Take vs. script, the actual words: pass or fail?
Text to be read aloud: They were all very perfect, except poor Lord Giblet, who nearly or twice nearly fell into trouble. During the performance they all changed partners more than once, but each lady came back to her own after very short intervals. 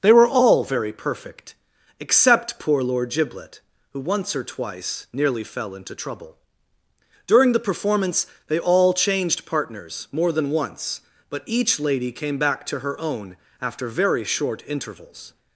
fail